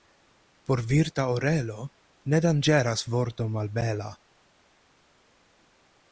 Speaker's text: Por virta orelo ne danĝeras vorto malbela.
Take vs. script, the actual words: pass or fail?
pass